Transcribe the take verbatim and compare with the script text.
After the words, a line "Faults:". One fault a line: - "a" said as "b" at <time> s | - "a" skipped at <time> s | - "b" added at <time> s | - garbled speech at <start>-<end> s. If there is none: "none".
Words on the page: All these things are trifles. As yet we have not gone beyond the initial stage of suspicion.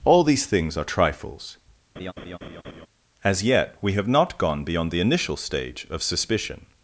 All these things are trifles. As yet we have not gone beyond the initial stage of suspicion.
Faults:
none